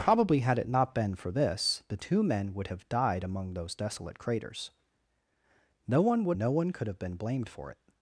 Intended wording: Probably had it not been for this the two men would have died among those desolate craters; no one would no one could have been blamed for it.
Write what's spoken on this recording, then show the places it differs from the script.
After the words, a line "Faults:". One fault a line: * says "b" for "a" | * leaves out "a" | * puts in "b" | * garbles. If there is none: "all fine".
Probably had it not been for this the two men would have died among those desolate craters; no one would no one could have been blamed for it.
Faults:
all fine